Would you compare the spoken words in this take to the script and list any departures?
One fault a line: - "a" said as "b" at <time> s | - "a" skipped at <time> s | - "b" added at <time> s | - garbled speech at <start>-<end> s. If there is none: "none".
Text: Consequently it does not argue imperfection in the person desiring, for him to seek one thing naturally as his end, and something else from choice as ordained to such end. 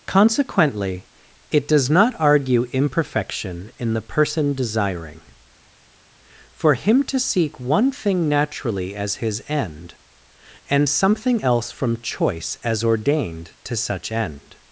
none